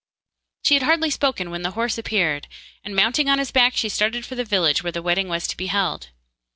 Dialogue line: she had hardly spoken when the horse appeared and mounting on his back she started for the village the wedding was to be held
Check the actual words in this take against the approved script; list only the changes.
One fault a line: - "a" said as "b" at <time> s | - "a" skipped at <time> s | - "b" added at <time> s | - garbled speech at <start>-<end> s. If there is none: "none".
- "where" added at 4.8 s